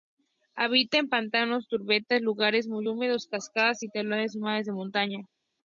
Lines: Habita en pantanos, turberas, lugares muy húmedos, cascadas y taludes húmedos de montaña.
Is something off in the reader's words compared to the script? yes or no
no